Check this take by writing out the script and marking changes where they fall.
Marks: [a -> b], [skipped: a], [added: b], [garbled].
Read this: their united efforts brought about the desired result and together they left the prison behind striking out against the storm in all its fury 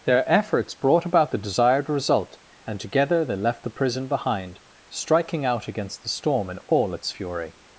their [skipped: united] efforts brought about the desired result and together they left the prison behind striking out against the storm in all its fury